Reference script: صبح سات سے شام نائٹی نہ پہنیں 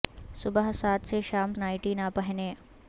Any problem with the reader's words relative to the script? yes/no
no